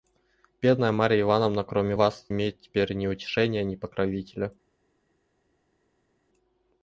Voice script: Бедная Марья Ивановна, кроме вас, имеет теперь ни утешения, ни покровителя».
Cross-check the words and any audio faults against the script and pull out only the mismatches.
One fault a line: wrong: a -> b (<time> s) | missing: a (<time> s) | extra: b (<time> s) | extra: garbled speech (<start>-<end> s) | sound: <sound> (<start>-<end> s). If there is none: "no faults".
no faults